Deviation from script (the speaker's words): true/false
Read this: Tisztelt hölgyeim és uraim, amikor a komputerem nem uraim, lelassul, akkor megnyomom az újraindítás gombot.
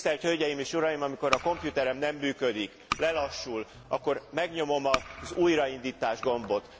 true